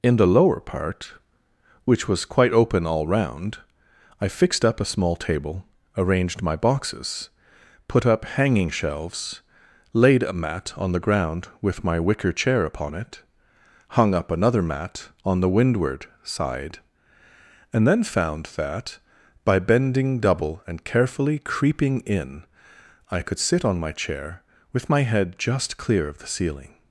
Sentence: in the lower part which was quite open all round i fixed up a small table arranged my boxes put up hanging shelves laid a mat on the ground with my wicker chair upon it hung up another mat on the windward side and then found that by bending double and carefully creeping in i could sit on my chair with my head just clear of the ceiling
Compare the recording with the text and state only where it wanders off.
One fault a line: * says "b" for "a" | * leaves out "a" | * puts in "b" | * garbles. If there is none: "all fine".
all fine